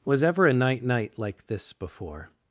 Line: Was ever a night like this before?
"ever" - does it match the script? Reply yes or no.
yes